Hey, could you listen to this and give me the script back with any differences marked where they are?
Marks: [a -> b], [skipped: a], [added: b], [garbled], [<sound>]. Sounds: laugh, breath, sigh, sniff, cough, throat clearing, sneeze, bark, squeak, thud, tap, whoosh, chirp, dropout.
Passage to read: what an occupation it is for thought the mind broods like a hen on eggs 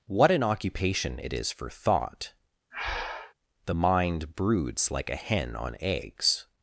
what an occupation it is for thought [breath] the mind broods like a hen on eggs